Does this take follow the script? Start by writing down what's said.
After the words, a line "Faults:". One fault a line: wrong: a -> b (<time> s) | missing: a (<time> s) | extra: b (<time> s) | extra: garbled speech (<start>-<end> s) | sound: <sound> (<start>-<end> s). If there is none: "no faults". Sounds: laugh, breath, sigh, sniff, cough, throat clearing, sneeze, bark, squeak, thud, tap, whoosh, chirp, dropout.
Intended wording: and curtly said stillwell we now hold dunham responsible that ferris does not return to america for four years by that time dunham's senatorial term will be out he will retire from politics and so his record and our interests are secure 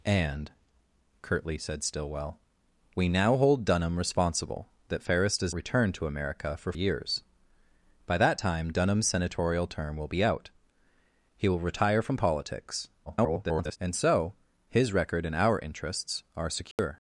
and curtly said stillwell we now hold dunham responsible that ferris does return to america for years by that time dunham's senatorial term will be out he will retire from politics [garbled] and so his record and our interests are secure
Faults:
missing: not (5.5 s)
missing: four (6.7 s)
extra: garbled speech (13.1-13.8 s)
sound: dropout (16.7-16.8 s)